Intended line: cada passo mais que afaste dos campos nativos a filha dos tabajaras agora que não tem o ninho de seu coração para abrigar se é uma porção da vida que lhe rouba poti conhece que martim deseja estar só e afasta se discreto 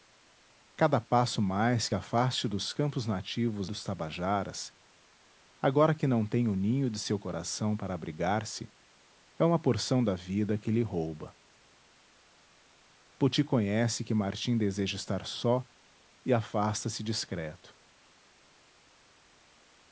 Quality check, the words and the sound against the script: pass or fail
fail